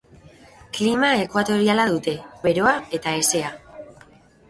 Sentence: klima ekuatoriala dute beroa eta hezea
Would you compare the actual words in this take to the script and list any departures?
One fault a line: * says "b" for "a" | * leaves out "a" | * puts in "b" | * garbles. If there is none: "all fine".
all fine